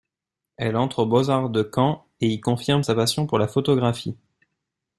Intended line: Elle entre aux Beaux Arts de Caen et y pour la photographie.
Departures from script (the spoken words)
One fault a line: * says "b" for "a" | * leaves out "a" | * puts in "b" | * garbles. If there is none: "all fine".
* puts in "confirme sa passion"